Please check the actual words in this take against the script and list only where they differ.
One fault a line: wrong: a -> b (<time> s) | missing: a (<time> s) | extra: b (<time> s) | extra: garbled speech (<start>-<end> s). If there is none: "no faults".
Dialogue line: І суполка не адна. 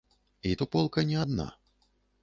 no faults